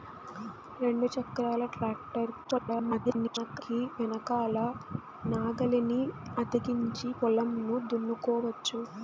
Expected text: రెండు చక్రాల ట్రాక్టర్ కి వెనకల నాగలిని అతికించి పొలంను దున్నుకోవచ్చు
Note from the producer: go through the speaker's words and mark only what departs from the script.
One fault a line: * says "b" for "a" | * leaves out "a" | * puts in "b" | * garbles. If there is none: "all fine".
* garbles